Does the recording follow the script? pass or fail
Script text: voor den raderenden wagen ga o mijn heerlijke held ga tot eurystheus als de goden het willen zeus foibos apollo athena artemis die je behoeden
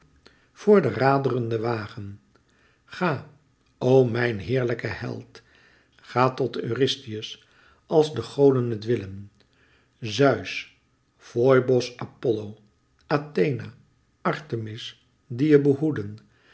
pass